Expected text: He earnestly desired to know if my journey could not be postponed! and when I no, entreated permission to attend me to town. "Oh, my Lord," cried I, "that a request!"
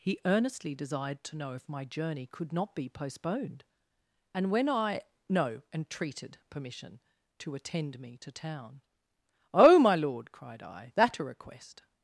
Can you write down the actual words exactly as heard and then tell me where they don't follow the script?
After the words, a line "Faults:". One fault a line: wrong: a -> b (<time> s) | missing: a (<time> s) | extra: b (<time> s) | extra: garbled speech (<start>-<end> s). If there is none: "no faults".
He earnestly desired to know if my journey could not be postponed! and when I no, entreated permission to attend me to town. "Oh, my Lord," cried I, "that a request!"
Faults:
no faults